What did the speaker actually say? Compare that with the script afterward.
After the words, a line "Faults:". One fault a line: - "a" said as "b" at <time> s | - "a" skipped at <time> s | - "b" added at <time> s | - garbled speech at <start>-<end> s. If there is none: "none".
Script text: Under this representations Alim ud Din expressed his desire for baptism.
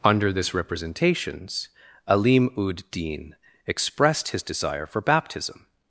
Under this representations Alim ud Din expressed his desire for baptism.
Faults:
none